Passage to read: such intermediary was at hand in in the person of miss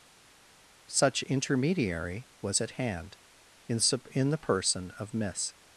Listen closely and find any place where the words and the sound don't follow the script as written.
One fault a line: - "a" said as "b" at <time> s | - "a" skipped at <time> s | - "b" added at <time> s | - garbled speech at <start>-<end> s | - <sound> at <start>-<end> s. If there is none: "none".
none